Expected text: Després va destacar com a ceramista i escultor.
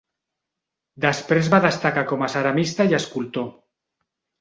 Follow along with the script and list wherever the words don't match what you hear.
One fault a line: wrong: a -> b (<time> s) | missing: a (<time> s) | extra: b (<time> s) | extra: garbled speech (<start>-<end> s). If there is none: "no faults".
no faults